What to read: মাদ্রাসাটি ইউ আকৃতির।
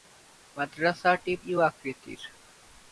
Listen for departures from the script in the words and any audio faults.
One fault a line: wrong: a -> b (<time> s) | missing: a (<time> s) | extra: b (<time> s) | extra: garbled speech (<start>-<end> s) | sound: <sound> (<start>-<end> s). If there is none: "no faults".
no faults